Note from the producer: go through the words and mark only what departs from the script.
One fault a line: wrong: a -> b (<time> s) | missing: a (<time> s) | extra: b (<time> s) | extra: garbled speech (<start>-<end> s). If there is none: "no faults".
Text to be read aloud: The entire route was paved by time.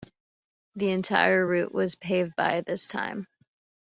extra: this (2.6 s)